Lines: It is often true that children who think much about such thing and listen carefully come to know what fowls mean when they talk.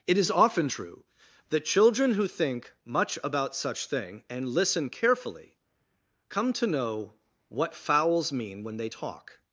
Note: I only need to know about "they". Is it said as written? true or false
true